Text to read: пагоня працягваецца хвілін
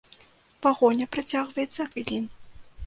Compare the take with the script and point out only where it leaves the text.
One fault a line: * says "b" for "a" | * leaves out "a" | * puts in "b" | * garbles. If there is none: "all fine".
all fine